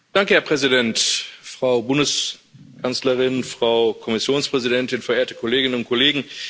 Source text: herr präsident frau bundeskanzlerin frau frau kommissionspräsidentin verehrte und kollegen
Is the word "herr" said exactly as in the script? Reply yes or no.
yes